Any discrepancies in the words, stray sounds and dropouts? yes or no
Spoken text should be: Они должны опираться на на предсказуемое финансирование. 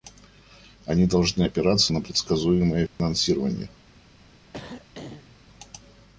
yes